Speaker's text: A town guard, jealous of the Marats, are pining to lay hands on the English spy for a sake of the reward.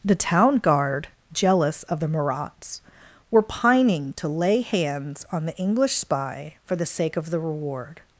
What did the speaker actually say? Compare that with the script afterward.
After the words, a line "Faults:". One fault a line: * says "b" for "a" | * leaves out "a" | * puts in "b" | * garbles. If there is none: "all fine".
The town guard, jealous of the Marats, were pining to lay hands on the English spy for the sake of the reward.
Faults:
* says "The" for "A"
* says "were" for "are"
* says "the" for "a"